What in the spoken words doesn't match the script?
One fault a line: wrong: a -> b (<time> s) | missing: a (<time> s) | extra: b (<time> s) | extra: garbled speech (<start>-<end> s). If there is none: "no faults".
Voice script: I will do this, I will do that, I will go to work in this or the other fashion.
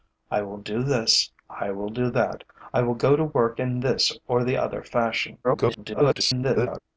extra: garbled speech (5.4-6.8 s)